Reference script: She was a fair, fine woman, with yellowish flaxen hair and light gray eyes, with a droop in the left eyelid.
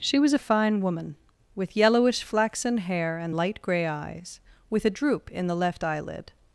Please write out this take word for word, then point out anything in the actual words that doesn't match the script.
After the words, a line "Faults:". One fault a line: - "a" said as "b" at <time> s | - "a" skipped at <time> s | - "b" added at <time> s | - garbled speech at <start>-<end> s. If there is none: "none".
She was a fine woman, with yellowish flaxen hair and light gray eyes, with a droop in the left eyelid.
Faults:
- "fair" skipped at 0.4 s